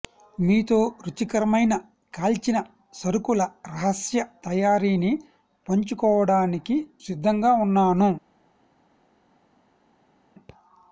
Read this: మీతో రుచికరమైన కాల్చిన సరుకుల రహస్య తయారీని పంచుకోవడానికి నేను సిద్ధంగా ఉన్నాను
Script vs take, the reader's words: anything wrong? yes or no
yes